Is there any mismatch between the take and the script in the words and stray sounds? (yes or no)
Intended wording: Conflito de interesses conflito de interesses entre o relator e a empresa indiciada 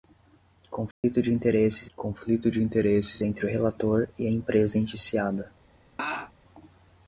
yes